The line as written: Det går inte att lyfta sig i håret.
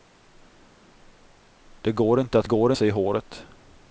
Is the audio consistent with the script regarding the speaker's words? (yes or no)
no